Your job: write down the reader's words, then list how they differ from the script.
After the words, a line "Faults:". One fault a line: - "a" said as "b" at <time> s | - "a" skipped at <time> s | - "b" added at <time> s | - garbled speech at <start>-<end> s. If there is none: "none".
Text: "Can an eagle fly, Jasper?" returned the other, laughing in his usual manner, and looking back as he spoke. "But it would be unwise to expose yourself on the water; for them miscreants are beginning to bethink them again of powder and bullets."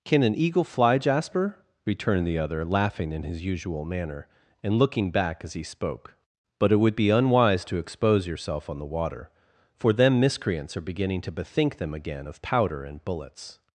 "Can an eagle fly, Jasper?" returned the other, laughing in his usual manner, and looking back as he spoke. "But it would be unwise to expose yourself on the water; for them miscreants are beginning to bethink them again of powder and bullets."
Faults:
none